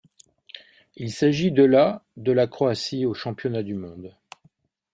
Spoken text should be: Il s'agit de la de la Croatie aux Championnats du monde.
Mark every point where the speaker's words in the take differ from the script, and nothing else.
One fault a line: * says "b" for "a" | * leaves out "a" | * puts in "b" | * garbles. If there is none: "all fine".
all fine